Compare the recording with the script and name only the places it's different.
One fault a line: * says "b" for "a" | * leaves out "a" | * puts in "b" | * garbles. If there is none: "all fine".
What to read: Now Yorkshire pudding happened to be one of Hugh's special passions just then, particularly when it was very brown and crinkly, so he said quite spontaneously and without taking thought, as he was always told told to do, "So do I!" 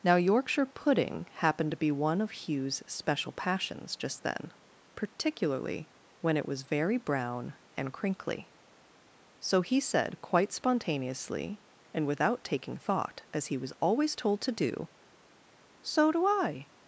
* leaves out "told"